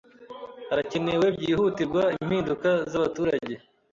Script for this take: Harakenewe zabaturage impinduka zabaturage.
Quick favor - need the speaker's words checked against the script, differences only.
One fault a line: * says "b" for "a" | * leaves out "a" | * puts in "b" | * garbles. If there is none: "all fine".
* says "byihutirwa" for "zabaturage"